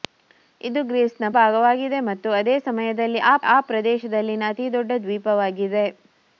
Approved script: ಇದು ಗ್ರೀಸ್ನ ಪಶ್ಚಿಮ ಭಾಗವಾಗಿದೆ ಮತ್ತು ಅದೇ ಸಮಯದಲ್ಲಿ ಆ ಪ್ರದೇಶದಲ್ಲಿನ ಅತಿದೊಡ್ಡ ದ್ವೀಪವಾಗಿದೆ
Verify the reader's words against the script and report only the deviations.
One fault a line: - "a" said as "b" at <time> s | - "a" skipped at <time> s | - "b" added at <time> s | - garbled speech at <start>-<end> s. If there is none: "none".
- "ಪಶ್ಚಿಮ" skipped at 1.2 s
- "ಆ" added at 3.5 s